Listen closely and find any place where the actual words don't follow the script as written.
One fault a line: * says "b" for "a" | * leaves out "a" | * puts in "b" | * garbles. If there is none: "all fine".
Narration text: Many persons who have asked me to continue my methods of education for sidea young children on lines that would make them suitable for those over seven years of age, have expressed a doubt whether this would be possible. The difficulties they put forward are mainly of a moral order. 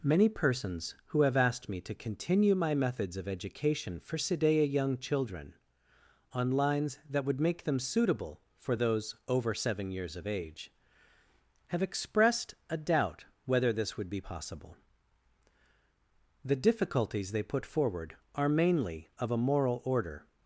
all fine